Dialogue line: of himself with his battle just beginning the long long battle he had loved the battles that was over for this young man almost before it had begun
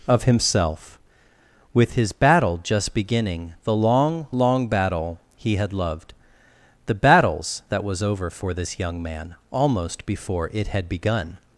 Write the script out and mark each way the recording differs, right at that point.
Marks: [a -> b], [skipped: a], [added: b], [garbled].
of himself with his battle just beginning the long long battle he had loved the battles that was over for this young man almost before it had begun